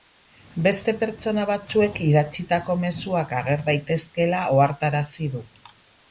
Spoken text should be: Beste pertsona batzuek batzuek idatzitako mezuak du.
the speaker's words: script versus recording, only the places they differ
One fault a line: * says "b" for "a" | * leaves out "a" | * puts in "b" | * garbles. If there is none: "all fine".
* leaves out "batzuek"
* puts in "ager daitezkeela ohartarazi"